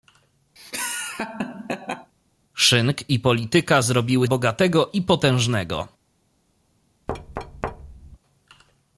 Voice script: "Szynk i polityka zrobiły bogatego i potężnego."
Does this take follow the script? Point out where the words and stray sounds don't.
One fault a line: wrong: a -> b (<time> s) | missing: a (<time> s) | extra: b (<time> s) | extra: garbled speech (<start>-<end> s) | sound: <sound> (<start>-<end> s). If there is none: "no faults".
sound: laugh (0.6-2.1 s)
sound: thud (7.1-8.2 s)